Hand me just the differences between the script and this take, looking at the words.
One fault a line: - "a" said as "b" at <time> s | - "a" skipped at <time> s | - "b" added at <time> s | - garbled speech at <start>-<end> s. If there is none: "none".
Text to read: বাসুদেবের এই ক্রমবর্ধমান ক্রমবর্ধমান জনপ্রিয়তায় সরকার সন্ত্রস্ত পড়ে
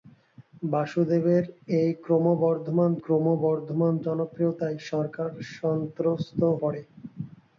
none